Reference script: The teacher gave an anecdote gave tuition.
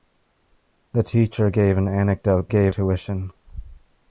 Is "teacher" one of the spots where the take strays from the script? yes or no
no